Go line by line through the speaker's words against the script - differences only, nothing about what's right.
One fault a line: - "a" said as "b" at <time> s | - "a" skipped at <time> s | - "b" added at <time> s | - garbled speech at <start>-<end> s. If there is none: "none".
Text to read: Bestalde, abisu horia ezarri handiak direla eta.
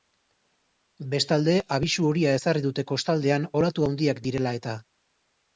- "dute kostaldean olatu" added at 2.7 s